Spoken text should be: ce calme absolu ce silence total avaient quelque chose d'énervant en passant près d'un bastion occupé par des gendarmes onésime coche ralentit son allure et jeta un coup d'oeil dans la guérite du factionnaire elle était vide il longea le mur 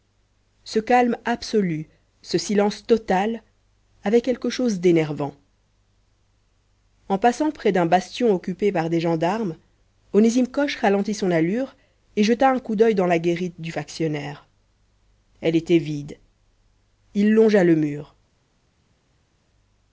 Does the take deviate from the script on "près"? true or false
false